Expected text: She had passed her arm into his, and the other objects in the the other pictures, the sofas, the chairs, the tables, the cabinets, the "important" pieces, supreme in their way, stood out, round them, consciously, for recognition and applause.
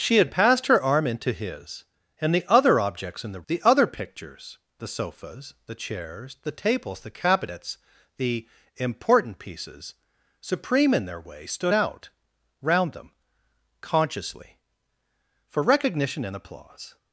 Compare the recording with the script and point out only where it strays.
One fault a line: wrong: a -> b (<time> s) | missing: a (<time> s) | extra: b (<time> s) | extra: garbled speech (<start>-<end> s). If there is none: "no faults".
no faults